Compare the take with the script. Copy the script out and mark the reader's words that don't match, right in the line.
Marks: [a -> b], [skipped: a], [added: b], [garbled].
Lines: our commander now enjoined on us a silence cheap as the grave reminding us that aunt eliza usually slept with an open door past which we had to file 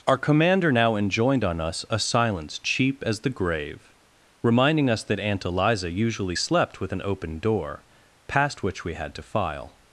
our commander now enjoined on us a silence cheap as the grave reminding us that aunt eliza usually slept with an open door past which we had to file